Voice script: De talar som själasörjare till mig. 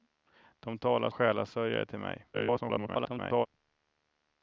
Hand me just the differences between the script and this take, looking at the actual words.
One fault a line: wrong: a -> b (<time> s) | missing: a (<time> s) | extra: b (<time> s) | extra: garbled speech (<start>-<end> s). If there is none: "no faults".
missing: som (1.1 s)
extra: garbled speech (2.3-3.5 s)